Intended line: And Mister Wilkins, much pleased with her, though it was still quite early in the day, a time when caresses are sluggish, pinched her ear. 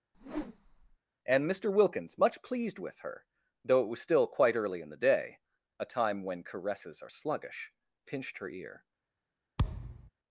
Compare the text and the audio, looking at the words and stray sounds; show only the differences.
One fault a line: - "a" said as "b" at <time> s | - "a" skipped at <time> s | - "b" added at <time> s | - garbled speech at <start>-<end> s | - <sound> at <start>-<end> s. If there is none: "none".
- whoosh at 0.1-1.0 s
- thud at 9.6-10.1 s